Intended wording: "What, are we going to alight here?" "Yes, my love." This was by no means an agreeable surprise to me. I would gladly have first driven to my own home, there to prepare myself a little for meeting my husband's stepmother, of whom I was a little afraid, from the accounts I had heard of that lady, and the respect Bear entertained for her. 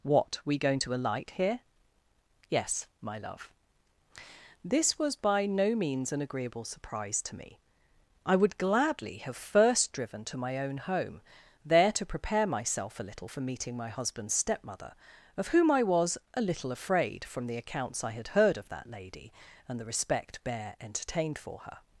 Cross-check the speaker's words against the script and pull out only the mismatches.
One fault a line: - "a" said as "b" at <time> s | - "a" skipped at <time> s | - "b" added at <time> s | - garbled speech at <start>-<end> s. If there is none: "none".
- "are" skipped at 0.4 s